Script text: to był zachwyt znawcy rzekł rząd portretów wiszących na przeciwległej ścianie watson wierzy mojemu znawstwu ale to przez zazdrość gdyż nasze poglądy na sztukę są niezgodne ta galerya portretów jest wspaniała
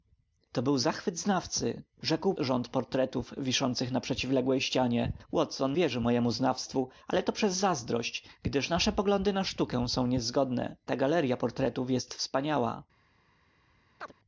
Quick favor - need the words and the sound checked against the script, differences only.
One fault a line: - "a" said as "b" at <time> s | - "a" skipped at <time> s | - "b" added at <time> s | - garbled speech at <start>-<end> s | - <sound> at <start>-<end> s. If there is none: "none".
- chirp at 14.0-14.1 s